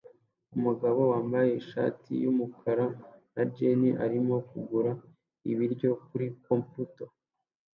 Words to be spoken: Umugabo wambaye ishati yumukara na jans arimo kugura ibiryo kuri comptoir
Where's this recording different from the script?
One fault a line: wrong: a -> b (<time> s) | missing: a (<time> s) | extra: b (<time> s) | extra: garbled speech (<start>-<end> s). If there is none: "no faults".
no faults